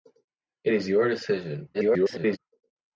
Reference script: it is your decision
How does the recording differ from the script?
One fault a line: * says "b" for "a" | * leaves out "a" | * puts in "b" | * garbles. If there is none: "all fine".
* garbles